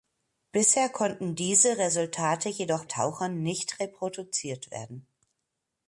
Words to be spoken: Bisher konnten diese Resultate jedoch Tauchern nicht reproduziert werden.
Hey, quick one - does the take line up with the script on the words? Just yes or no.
yes